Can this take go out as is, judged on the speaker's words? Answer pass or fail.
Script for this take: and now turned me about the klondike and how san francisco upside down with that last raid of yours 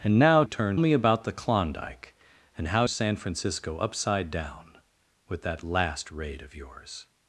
pass